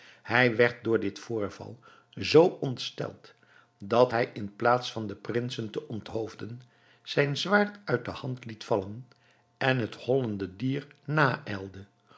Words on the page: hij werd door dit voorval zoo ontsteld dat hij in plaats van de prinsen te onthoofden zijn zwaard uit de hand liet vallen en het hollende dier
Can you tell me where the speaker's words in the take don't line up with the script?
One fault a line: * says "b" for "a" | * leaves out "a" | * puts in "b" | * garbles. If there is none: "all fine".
all fine